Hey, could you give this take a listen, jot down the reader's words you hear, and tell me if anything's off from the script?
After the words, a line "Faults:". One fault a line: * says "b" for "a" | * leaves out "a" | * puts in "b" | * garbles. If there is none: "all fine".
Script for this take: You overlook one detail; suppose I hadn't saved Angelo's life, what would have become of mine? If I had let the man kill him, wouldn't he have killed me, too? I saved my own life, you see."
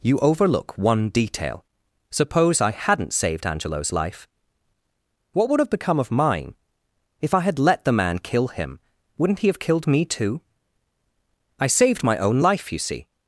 You overlook one detail; suppose I hadn't saved Angelo's life, what would have become of mine? If I had let the man kill him, wouldn't he have killed me, too? I saved my own life, you see."
Faults:
all fine